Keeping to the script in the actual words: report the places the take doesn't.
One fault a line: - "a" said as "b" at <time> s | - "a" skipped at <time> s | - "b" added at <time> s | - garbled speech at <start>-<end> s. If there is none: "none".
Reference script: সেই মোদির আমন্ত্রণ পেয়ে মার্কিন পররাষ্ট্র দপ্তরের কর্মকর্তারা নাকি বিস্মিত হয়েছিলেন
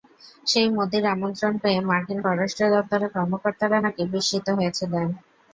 none